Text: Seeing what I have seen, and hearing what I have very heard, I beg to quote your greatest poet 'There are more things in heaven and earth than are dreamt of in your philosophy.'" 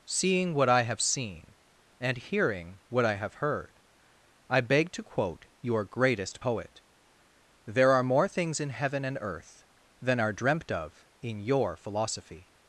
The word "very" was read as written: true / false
false